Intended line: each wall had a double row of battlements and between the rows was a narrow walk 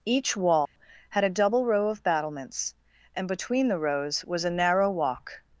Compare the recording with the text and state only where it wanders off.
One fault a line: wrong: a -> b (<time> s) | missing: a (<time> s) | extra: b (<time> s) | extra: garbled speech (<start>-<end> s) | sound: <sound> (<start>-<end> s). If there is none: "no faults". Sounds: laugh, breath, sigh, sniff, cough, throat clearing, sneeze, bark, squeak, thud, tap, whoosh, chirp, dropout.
sound: dropout (0.7-0.8 s)